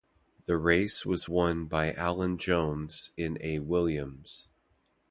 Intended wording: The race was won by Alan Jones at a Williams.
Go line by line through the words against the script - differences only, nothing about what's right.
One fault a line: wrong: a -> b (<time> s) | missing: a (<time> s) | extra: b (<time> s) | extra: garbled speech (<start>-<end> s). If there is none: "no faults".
wrong: at -> in (3.1 s)